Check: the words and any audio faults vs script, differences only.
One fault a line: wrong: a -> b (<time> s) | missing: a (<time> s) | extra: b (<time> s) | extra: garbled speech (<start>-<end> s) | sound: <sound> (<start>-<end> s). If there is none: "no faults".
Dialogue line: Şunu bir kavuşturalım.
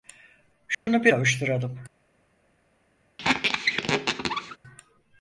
sound: dropout (0.7-0.9 s)
sound: squeak (3.2-4.6 s)